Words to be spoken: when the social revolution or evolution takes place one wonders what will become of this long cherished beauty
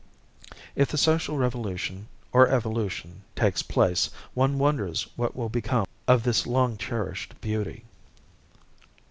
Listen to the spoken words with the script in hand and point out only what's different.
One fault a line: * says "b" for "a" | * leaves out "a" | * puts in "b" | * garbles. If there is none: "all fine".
* says "if" for "when"